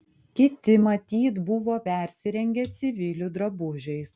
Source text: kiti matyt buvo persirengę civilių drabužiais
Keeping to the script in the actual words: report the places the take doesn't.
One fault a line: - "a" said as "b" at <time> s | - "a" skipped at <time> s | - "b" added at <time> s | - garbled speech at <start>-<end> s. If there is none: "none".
none